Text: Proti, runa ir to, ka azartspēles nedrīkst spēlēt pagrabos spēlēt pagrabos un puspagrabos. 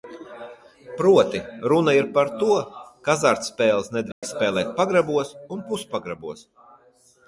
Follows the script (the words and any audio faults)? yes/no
no